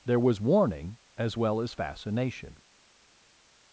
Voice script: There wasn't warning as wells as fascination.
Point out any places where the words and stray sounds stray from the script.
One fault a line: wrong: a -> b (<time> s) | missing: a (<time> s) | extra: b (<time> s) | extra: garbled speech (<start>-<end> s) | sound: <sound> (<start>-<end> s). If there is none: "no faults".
wrong: wasn't -> was (0.2 s)
wrong: wells -> well (1.3 s)